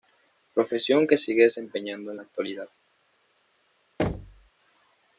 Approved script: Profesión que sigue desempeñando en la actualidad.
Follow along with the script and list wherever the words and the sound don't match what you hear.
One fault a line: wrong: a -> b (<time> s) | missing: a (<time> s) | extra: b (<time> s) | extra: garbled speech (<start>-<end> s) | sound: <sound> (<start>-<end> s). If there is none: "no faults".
sound: thud (4.0-4.5 s)